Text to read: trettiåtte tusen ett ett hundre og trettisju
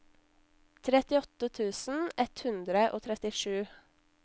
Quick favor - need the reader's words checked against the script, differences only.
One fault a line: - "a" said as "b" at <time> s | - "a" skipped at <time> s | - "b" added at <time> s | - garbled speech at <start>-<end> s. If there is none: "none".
- "ett" skipped at 2.4 s